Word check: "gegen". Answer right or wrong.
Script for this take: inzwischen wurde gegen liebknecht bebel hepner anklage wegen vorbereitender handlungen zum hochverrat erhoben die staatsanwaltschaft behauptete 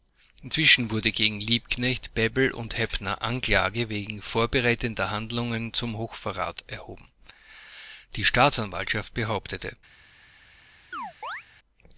right